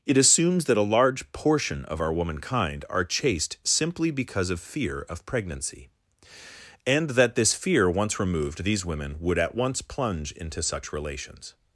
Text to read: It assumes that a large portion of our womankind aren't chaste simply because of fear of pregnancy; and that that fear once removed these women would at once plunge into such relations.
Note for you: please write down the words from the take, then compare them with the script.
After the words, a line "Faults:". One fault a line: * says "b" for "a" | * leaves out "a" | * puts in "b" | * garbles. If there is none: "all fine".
It assumes that a large portion of our womankind are chaste simply because of fear of pregnancy; and that this fear once removed these women would at once plunge into such relations.
Faults:
* says "are" for "aren't"
* says "this" for "that"